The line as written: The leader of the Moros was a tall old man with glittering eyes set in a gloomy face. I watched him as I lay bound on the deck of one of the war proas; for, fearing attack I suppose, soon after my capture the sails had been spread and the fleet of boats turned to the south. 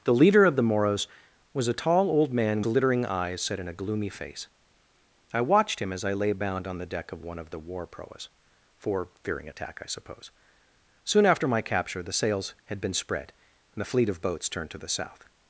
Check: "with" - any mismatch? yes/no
yes